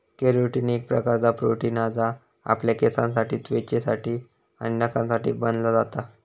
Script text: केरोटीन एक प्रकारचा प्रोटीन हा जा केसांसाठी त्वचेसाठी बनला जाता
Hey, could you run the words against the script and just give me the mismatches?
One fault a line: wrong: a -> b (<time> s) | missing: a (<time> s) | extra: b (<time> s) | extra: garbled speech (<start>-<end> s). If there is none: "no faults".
extra: आपल्या (2.5 s)
extra: आणि नखांसाठी (4.6 s)